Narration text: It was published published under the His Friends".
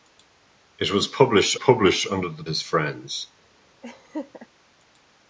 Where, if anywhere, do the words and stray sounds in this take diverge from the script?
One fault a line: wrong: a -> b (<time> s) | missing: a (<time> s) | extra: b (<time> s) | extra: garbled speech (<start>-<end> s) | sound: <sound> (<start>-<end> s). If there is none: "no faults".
sound: laugh (3.8-4.5 s)